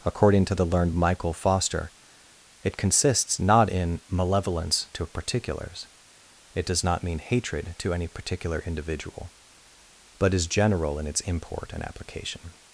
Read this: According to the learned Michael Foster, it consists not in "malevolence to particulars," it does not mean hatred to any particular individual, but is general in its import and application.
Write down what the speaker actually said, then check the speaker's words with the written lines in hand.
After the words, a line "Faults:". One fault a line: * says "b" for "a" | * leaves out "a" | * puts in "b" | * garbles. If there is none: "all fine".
According to the learned Michael Foster, it consists not in "malevolence to particulars," it does not mean hatred to any particular individual, but is general in its import and application.
Faults:
all fine